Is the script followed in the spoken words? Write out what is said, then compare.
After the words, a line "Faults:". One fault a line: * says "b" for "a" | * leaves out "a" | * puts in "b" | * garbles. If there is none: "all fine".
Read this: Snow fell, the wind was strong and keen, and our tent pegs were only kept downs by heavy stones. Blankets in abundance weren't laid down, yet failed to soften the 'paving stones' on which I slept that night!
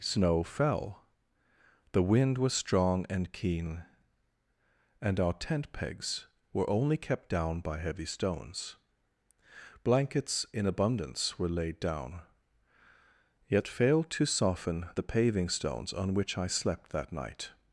Snow fell, the wind was strong and keen, and our tent pegs were only kept down by heavy stones. Blankets in abundance were laid down, yet failed to soften the 'paving stones' on which I slept that night!
Faults:
* says "down" for "downs"
* says "were" for "weren't"